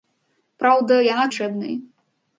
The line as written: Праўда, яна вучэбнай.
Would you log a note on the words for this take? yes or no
no